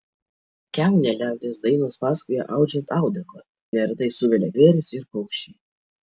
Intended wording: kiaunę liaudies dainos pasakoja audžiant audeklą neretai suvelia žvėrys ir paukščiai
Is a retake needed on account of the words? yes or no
no